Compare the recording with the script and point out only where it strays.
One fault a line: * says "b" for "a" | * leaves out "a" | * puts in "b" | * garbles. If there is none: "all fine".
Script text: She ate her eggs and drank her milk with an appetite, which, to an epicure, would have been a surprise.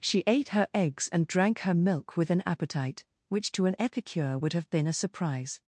all fine